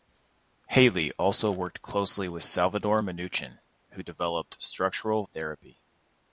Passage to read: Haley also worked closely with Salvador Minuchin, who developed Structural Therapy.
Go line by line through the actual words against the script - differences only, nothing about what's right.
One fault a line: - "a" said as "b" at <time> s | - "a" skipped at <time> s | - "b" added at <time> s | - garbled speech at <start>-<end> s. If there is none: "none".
none